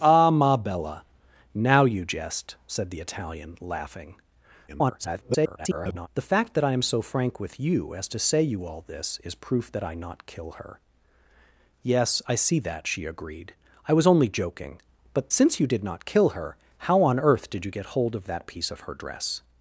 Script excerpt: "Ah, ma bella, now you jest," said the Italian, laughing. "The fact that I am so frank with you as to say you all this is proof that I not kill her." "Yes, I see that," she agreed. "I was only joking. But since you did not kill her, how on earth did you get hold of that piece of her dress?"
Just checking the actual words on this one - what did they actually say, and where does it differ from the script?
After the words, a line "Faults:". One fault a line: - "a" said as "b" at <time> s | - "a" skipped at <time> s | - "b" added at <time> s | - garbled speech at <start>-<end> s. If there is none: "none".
"Ah, ma bella, now you jest," said the Italian, laughing. [garbled] "The fact that I am so frank with you as to say you all this is proof that I not kill her." "Yes, I see that," she agreed. "I was only joking. But since you did not kill her, how on earth did you get hold of that piece of her dress?"
Faults:
- garbled speech at 4.7-6.1 s